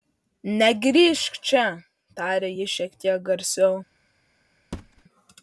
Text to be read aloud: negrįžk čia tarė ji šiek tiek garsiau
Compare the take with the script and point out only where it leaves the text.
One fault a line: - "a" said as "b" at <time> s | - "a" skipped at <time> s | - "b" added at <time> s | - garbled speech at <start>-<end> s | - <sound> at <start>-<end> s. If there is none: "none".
- thud at 4.7-5.0 s